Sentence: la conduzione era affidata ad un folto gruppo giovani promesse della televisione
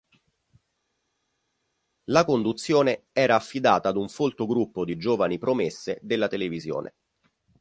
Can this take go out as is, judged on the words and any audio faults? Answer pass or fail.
fail